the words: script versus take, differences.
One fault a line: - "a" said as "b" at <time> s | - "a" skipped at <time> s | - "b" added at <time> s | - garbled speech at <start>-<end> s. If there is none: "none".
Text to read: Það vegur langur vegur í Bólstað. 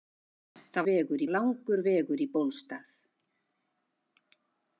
none